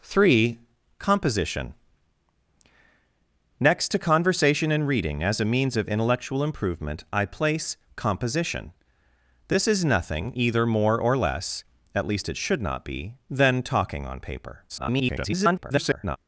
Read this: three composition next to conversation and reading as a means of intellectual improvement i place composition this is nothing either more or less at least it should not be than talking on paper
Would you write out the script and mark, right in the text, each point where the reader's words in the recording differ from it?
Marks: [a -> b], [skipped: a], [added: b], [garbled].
three composition next to conversation and reading as a means of intellectual improvement i place composition this is nothing either more or less at least it should not be than talking on paper [garbled]